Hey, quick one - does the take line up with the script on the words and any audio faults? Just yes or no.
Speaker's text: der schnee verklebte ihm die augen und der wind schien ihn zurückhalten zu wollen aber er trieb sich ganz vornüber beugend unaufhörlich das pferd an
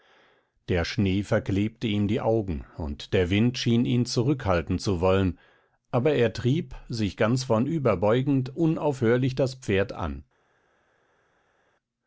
yes